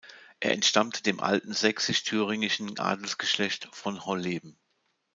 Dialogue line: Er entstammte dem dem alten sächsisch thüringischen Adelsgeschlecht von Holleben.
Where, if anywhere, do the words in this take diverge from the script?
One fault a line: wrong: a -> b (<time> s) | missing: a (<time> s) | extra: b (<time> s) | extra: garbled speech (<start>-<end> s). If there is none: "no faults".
missing: dem (1.2 s)